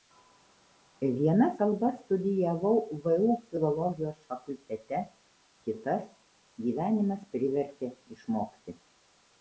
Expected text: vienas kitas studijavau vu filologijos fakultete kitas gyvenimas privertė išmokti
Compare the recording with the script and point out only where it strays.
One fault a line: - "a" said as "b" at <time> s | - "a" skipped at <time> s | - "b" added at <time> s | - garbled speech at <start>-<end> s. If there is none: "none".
- "kitas" said as "kalbas" at 1.6 s